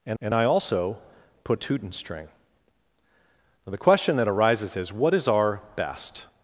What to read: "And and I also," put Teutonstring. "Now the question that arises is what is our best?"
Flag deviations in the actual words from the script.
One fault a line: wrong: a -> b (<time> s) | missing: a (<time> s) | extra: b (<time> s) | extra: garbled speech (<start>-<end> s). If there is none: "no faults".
no faults